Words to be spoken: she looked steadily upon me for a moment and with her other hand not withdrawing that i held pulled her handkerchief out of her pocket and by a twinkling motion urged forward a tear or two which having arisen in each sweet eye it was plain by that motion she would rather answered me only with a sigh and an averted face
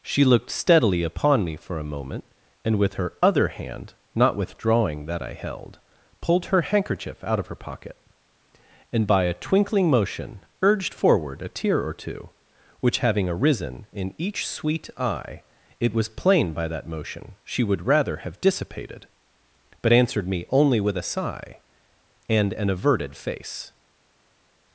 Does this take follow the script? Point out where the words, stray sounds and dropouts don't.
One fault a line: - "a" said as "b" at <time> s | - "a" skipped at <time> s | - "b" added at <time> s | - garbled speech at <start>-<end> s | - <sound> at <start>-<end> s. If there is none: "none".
- "have dissipated but" added at 18.2 s